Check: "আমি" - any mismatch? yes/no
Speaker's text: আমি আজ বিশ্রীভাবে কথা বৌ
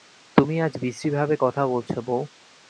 yes